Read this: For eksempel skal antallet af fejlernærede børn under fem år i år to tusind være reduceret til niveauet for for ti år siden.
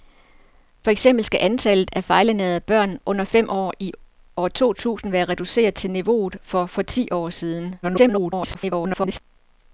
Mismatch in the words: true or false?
true